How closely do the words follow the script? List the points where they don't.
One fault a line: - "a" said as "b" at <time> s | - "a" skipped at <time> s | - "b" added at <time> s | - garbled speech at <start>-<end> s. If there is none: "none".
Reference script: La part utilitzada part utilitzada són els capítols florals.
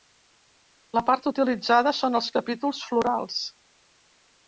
- "part utilitzada" skipped at 1.9 s